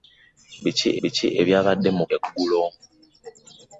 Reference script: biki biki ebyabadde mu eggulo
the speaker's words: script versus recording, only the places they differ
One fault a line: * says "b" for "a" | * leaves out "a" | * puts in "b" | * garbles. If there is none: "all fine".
all fine